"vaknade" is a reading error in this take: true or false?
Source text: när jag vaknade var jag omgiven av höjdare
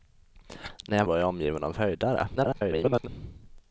true